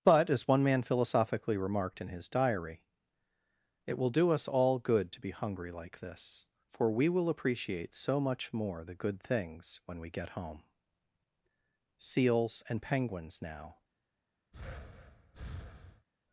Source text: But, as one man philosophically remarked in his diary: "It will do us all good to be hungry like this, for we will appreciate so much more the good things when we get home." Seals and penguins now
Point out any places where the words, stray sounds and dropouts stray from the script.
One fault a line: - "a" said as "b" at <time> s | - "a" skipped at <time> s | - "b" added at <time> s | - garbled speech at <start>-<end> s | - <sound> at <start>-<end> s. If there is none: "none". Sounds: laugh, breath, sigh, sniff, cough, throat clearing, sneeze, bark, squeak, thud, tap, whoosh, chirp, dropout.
- breath at 14.5-16.1 s